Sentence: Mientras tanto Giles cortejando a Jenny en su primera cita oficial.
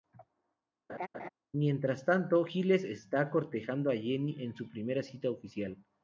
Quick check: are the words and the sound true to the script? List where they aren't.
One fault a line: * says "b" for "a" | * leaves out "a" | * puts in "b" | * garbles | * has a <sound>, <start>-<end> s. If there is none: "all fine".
* has a laugh, 0.9-1.3 s
* puts in "está"